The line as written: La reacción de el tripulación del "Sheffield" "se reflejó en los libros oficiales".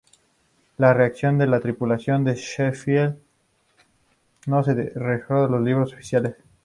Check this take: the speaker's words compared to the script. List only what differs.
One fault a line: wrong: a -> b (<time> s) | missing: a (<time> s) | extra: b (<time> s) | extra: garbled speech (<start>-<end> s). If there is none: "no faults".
wrong: el -> la (1.4 s)
extra: no (4.5 s)